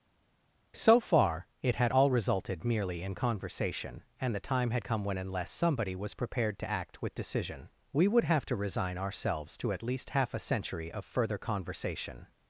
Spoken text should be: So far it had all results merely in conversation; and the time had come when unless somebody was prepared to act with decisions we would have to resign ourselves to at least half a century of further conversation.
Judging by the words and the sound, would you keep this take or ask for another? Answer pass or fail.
fail